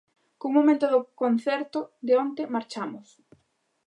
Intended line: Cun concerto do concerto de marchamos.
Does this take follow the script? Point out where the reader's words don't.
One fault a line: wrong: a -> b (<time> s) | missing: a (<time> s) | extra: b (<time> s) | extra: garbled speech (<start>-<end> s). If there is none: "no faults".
wrong: concerto -> momento (0.6 s)
extra: onte (2.2 s)